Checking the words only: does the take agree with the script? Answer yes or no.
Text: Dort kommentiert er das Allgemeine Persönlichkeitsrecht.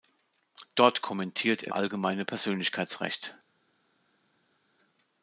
no